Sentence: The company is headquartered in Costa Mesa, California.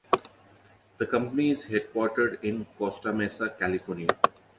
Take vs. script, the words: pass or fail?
pass